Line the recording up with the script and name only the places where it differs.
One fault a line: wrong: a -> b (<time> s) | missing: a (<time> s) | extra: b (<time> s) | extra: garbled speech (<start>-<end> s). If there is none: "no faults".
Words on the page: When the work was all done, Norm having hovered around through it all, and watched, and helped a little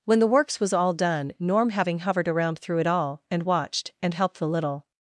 wrong: work -> works (0.3 s)
wrong: a -> the (4.4 s)